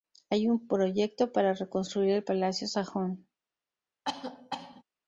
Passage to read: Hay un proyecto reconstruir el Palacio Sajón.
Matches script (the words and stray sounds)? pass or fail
fail